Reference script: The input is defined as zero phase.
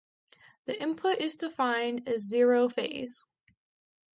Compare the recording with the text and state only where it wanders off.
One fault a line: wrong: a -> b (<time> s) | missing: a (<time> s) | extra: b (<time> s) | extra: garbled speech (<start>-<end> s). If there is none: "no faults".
no faults